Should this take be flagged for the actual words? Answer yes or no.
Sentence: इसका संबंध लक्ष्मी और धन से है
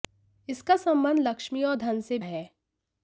no